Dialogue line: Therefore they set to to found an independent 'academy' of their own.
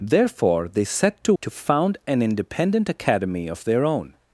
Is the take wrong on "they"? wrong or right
right